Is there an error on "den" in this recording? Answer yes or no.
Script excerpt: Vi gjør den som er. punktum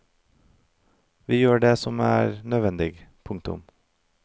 yes